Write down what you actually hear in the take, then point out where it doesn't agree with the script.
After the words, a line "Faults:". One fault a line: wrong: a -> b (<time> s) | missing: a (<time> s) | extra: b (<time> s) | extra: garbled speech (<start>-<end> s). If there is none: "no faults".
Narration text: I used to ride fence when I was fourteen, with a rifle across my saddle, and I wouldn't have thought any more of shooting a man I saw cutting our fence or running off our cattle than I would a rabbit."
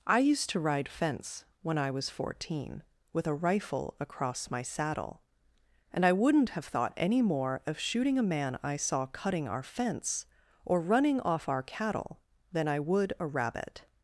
I used to ride fence when I was fourteen, with a rifle across my saddle, and I wouldn't have thought any more of shooting a man I saw cutting our fence or running off our cattle than I would a rabbit."
Faults:
no faults